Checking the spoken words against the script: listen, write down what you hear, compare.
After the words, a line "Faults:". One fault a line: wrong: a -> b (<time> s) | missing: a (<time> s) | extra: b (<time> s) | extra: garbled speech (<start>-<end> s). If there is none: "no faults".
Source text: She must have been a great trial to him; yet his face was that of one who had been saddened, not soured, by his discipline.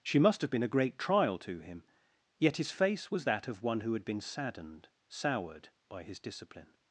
She must have been a great trial to him; yet his face was that of one who had been saddened, soured, by his discipline.
Faults:
missing: not (4.9 s)